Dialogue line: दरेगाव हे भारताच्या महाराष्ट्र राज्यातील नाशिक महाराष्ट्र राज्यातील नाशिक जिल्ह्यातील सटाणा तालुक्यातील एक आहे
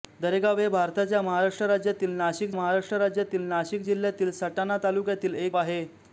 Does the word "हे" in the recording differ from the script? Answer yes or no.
no